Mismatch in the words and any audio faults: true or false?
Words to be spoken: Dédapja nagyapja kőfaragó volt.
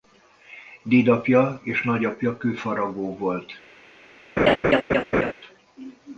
true